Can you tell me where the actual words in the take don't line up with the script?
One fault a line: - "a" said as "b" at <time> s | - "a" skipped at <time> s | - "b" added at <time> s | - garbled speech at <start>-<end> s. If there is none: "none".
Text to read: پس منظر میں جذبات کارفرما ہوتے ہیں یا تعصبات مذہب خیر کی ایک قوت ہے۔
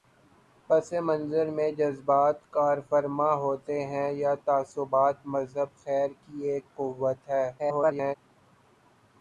- garbled speech at 7.6-8.2 s